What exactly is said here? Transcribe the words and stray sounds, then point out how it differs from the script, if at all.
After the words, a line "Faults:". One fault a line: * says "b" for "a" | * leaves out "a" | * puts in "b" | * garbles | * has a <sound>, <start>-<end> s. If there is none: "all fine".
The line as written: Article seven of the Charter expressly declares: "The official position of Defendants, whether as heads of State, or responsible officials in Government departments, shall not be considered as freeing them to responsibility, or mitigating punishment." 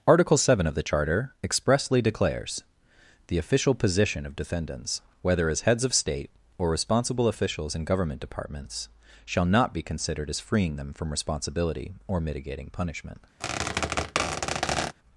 Article seven of the Charter expressly declares: "The official position of Defendants, whether as heads of State, or responsible officials in Government departments, shall not be considered as freeing them from responsibility, or mitigating punishment."
Faults:
* says "from" for "to"
* has a squeak, 13.4-14.9 s